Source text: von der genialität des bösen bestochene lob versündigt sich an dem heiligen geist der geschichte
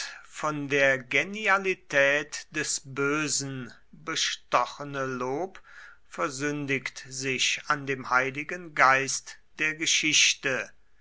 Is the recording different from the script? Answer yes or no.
no